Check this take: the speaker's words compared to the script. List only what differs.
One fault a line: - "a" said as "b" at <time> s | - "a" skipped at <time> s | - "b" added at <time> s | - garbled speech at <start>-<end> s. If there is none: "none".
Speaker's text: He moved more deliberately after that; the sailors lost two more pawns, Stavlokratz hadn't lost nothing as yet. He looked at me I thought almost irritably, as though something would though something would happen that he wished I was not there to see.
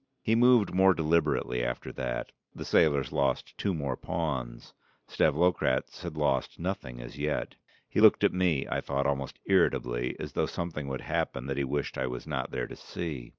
- "hadn't" said as "had" at 6.0 s
- "though something would" skipped at 11.0 s